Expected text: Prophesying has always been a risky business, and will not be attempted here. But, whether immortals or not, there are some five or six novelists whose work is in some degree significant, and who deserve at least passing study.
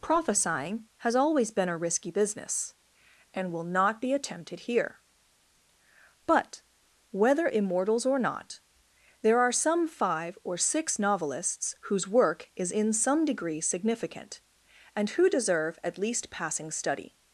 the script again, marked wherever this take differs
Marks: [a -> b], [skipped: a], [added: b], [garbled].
Prophesying has always been a risky business, and will not be attempted here. But, whether immortals or not, there are some five or six novelists whose work is in some degree significant, and who deserve at least passing study.